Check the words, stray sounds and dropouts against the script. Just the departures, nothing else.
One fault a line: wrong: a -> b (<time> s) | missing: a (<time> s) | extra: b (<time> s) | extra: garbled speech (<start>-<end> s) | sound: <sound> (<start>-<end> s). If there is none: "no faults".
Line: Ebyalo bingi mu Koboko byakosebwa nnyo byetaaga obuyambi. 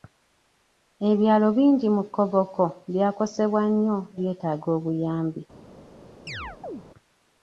sound: chirp (6.3-6.8 s)